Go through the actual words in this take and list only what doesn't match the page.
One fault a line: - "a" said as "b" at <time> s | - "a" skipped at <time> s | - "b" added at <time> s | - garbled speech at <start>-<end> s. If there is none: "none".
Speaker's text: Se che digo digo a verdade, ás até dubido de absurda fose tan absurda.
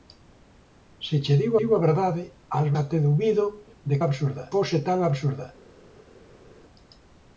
none